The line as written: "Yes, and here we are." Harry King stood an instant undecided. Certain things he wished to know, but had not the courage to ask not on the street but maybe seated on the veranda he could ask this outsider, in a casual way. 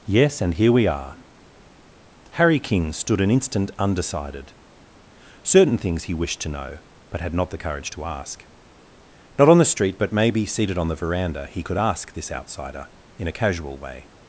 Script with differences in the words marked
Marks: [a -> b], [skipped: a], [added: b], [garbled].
"Yes, and here we are." Harry King stood an instant undecided. Certain things he wished to know, but had not the courage to ask not on the street but maybe seated on the veranda he could ask this outsider, in a casual way.